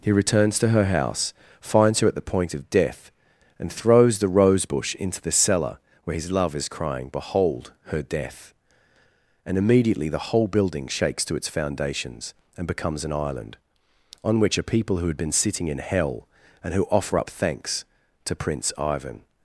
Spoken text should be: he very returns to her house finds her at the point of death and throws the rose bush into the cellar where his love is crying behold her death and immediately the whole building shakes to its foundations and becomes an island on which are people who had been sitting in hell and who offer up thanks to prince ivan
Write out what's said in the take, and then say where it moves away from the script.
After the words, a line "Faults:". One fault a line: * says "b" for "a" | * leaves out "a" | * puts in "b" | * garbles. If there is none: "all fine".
he returns to her house finds her at the point of death and throws the rose bush into the cellar where his love is crying behold her death and immediately the whole building shakes to its foundations and becomes an island on which are people who had been sitting in hell and who offer up thanks to prince ivan
Faults:
* leaves out "very"